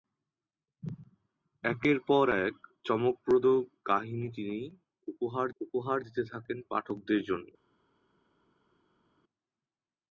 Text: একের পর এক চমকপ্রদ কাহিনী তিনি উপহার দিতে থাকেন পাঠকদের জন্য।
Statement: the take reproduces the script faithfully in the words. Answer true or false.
false